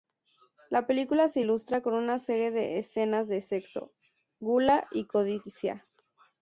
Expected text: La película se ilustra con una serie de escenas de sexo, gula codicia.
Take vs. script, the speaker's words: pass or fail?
fail